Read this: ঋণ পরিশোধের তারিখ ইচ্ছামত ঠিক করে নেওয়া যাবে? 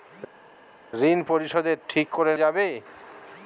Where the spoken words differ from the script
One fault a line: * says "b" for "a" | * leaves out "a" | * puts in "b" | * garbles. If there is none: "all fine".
* leaves out "তারিখ ইচ্ছামত"
* leaves out "নেওয়া"